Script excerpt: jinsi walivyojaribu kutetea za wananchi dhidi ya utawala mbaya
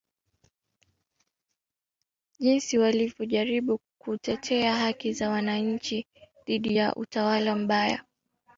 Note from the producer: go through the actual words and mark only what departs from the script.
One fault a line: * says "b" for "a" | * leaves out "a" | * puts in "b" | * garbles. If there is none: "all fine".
* puts in "haki"